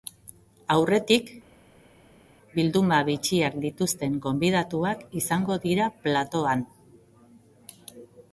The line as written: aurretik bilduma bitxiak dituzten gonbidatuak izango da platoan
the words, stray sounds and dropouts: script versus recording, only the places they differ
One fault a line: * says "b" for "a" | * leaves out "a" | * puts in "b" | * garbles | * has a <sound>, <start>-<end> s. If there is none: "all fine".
* says "dira" for "da"